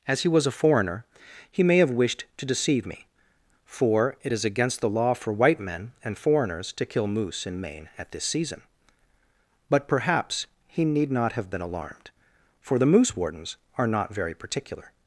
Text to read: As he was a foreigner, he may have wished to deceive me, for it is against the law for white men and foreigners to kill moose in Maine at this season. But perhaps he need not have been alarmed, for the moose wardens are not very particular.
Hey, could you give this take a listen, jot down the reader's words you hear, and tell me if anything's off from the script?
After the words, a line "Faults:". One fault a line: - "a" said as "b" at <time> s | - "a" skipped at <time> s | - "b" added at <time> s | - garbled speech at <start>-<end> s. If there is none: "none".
As he was a foreigner, he may have wished to deceive me, for it is against the law for white men and foreigners to kill moose in Maine at this season. But perhaps he need not have been alarmed, for the moose wardens are not very particular.
Faults:
none